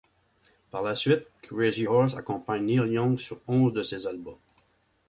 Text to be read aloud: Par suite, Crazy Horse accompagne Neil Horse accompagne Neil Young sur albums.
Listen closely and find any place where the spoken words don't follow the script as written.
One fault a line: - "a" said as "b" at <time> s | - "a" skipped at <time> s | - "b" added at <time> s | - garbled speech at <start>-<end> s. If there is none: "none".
- "la" added at 0.8 s
- "Horse accompagne Neil Young sur" said as "Young sur onze de ses" at 2.9 s